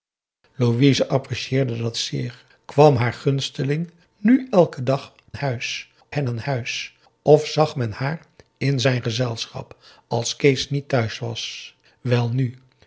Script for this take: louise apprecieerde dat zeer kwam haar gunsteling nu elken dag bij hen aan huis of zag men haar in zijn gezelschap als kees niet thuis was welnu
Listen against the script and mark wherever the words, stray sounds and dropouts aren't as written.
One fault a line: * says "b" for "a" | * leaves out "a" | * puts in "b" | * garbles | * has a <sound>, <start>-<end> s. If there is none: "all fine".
* says "huis" for "bij"